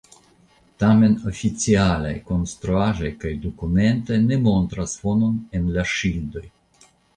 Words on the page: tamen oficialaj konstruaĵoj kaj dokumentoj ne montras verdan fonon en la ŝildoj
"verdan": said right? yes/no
no